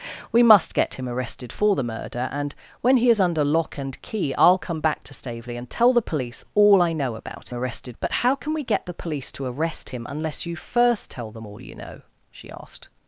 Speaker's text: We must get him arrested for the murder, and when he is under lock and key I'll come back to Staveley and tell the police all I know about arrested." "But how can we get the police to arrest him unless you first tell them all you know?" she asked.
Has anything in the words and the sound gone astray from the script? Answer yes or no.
no